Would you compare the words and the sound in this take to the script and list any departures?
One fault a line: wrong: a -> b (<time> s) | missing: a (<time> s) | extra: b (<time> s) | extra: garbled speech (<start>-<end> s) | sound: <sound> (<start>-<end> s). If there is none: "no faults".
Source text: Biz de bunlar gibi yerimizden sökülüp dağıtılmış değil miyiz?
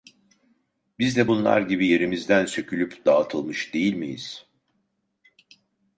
no faults